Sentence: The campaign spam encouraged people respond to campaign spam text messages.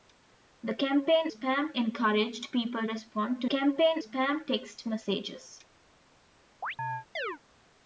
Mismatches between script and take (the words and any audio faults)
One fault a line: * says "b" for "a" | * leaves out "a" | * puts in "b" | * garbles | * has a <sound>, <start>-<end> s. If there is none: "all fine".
* has a chirp, 6.6-7.4 s